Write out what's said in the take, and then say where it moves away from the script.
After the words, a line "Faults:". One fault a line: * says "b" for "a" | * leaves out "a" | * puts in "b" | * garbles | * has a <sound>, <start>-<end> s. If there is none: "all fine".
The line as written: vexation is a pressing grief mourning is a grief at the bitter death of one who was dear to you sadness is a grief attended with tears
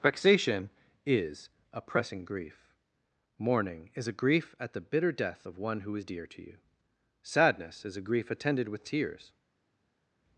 vexation is a pressing grief mourning is a grief at the bitter death of one who is dear to you sadness is a grief attended with tears
Faults:
* says "is" for "was"